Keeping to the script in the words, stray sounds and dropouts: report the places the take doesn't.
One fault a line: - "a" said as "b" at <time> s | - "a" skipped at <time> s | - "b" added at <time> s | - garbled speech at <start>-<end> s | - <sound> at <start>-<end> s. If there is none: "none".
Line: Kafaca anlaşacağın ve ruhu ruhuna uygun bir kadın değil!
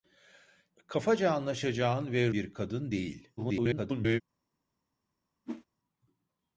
- "ruhu ruhuna uygun" skipped at 2.3 s
- garbled speech at 3.4-4.2 s
- whoosh at 5.4-5.6 s